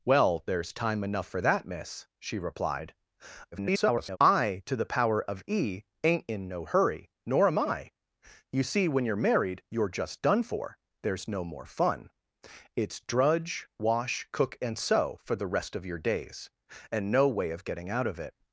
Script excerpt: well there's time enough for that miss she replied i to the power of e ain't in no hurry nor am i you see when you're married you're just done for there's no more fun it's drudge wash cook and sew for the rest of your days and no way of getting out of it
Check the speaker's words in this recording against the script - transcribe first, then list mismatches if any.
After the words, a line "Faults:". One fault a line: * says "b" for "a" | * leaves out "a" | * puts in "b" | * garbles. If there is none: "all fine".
well there's time enough for that miss she replied [garbled] i to the power of e ain't in no hurry nor am i you see when you're married you're just done for there's no more fun it's drudge wash cook and sew for the rest of your days and no way of getting out of it
Faults:
* garbles